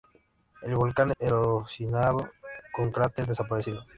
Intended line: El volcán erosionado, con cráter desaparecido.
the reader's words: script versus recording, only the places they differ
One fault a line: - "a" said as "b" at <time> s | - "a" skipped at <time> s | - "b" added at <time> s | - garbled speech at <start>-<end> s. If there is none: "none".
none